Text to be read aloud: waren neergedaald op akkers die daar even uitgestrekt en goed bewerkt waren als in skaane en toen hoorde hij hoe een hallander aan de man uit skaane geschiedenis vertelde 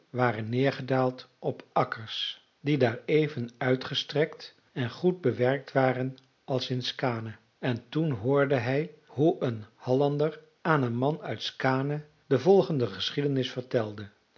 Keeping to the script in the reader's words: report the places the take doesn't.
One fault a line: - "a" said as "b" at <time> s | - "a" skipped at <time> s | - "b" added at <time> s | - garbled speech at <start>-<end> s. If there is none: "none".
- "de" said as "een" at 10.8 s
- "de volgende" added at 12.3 s